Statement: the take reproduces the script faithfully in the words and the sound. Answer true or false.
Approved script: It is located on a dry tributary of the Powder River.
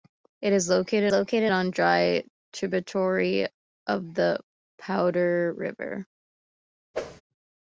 false